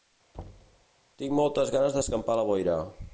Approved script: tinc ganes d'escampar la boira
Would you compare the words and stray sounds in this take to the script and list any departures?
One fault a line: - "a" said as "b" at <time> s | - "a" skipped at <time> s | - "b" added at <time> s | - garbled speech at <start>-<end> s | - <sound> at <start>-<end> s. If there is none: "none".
- thud at 0.3-0.9 s
- "moltes" added at 1.4 s